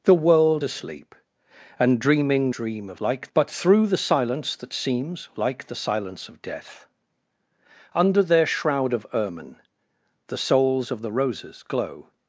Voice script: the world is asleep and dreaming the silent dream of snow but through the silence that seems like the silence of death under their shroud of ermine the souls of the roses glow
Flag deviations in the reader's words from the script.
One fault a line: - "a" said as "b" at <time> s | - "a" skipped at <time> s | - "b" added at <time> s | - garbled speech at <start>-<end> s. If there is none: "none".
- "is" skipped at 0.6 s
- "the silent" skipped at 2.5 s
- "snow" said as "like" at 3.0 s